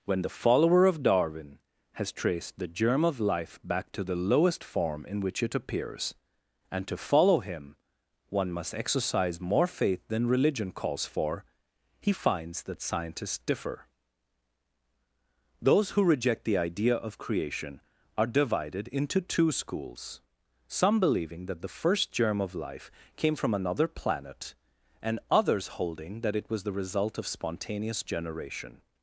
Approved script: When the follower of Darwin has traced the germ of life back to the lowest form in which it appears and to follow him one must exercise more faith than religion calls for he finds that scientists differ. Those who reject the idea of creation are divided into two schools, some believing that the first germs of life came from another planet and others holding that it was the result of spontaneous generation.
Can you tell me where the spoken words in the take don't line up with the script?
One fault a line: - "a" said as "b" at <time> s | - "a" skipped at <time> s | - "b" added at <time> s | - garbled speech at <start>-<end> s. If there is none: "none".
- "germs" said as "germ" at 22.1 s